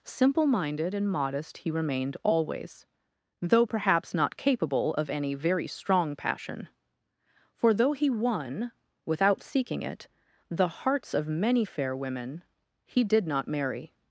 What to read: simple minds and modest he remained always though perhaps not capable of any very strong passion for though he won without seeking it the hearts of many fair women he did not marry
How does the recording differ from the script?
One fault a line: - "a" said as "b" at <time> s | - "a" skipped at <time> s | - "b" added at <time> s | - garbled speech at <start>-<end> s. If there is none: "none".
- "minds" said as "minded" at 0.5 s